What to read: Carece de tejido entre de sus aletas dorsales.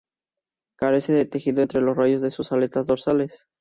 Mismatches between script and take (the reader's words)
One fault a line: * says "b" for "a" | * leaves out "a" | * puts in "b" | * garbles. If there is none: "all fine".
* puts in "los rayos"